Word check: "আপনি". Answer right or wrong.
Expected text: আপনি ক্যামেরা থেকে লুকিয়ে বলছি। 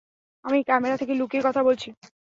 wrong